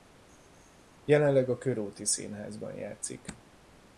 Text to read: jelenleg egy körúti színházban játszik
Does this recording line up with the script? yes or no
no